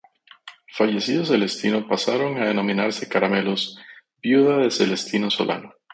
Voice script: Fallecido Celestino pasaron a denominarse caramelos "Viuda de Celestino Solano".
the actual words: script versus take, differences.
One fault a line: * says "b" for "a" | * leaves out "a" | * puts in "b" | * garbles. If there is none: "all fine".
all fine